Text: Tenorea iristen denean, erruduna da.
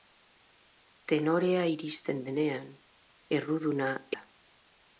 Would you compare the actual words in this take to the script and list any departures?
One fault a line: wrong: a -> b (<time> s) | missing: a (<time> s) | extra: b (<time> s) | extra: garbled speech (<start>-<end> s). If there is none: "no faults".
no faults